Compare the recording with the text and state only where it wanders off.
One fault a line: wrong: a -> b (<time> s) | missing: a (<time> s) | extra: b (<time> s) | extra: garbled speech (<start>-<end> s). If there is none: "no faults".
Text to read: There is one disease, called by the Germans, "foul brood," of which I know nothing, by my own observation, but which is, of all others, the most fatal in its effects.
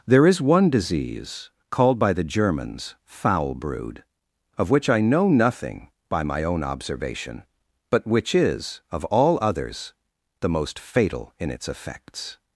no faults